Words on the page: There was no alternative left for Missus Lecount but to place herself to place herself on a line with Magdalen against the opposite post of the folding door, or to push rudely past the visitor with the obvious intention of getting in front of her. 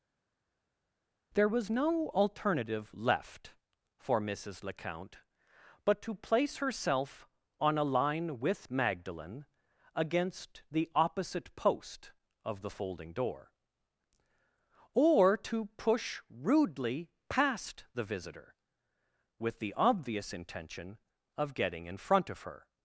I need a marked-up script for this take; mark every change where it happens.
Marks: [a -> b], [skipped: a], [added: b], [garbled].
There was no alternative left for Missus Lecount but to place herself [skipped: to place herself] on a line with Magdalen against the opposite post of the folding door, or to push rudely past the visitor with the obvious intention of getting in front of her.